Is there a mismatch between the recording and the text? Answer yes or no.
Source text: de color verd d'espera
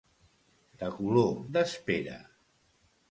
yes